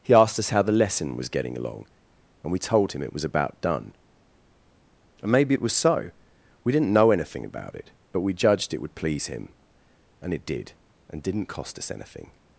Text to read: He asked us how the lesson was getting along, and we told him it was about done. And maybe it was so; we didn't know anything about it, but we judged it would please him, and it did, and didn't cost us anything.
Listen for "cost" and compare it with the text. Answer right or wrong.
right